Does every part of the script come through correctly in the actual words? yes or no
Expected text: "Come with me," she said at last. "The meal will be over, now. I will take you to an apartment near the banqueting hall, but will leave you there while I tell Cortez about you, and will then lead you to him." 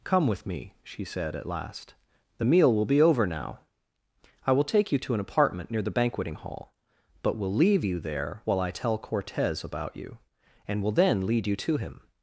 yes